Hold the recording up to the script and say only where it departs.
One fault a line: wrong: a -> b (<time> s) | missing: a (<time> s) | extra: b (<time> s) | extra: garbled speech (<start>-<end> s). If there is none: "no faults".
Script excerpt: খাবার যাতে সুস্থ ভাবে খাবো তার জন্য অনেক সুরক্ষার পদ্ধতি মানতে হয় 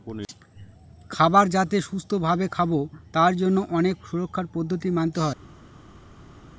no faults